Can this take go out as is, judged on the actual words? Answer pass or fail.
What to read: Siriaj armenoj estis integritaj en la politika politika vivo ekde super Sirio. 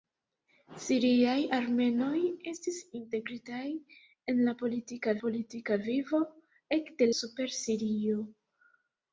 pass